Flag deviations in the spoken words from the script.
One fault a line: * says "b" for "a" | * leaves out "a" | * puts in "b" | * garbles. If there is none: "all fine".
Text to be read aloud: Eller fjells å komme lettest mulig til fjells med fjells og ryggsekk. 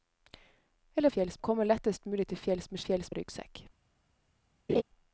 all fine